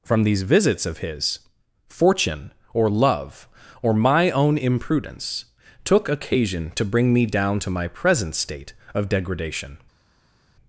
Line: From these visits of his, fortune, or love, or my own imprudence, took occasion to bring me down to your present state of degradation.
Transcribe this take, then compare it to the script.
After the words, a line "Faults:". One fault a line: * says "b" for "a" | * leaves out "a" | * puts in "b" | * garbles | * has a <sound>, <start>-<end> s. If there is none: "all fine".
From these visits of his, fortune, or love, or my own imprudence, took occasion to bring me down to my present state of degradation.
Faults:
* says "my" for "your"